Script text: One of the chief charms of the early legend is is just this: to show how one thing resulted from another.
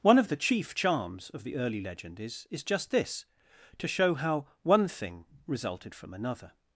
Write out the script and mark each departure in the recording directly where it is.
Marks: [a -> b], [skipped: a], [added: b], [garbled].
One of the chief charms of the early legend is is just this: to show how one thing resulted from another.